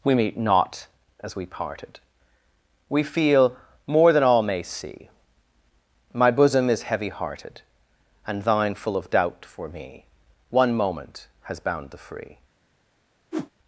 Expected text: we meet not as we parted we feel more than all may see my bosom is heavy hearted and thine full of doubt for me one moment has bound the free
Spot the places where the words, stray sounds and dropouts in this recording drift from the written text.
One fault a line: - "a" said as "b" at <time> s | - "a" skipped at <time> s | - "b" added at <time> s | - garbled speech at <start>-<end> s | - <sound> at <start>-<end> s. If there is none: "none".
- whoosh at 13.3-13.5 s